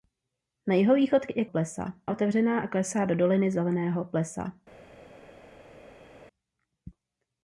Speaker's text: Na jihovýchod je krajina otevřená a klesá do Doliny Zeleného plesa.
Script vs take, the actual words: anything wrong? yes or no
yes